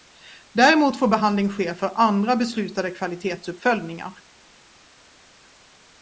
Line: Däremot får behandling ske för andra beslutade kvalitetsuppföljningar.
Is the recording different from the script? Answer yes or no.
no